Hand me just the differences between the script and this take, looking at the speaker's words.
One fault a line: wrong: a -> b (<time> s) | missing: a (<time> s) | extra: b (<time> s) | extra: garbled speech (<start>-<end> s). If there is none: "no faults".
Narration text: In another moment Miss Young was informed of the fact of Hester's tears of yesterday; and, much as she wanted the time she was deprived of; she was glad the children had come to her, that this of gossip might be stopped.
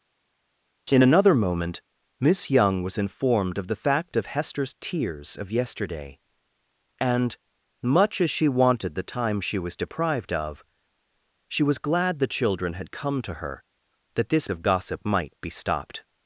no faults